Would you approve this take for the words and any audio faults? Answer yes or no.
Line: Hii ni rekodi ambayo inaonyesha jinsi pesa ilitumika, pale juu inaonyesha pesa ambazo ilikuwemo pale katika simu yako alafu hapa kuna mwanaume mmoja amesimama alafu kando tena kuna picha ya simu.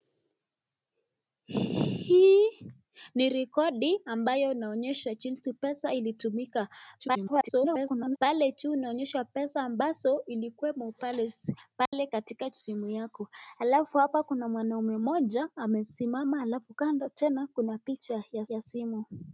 no